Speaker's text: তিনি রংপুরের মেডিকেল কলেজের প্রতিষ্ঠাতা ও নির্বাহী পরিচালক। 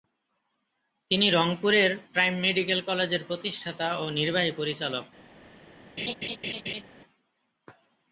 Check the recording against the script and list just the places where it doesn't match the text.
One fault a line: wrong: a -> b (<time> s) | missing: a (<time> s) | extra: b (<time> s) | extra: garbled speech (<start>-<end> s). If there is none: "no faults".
extra: প্রাইম (2.1 s)